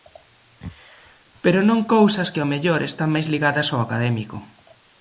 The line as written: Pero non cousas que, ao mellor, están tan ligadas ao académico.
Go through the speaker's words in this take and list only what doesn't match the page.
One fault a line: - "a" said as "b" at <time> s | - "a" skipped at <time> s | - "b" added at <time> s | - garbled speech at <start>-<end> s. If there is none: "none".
- "tan" said as "máis" at 3.1 s